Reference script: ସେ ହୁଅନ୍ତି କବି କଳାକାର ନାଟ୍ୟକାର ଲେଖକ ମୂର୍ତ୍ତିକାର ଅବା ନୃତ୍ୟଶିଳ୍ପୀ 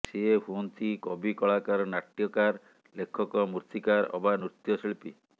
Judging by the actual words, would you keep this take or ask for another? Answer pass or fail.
pass